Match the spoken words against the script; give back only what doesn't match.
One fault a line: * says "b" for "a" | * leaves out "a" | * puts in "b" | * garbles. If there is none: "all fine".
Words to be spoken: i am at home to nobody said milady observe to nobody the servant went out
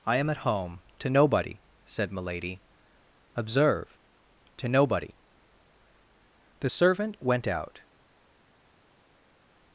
all fine